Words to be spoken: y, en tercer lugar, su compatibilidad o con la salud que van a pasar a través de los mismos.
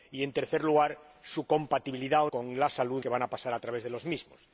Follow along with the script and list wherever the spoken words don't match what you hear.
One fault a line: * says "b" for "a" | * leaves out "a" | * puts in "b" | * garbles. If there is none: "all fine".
all fine